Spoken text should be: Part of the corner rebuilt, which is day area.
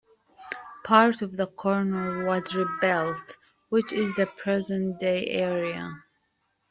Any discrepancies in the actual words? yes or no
yes